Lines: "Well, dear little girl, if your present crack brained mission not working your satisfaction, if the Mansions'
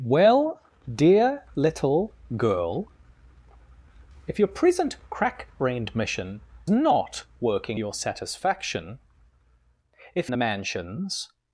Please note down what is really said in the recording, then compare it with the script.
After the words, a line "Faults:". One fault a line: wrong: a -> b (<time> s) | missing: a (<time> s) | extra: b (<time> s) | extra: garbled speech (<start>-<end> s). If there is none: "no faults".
"Well, dear little girl, if your present crack brained mission not working your satisfaction, if the Mansions'
Faults:
no faults